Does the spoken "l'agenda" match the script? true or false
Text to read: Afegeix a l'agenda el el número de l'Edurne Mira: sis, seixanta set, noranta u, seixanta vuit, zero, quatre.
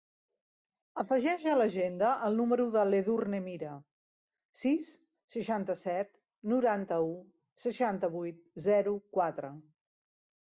true